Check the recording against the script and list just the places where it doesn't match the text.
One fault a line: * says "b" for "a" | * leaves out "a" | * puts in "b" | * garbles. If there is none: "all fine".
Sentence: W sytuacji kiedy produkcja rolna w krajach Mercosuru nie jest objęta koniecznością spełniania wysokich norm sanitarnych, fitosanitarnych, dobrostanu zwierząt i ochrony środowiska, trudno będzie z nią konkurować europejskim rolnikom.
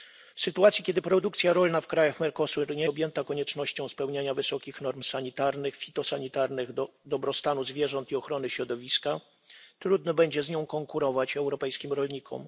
* leaves out "jest"